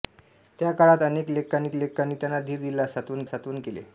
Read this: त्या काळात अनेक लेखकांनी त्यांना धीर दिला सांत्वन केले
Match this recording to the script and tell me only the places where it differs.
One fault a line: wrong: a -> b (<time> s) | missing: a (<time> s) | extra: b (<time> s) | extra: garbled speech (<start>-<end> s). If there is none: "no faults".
extra: लेखकांनी (1.7 s)
extra: सांत्वन (3.2 s)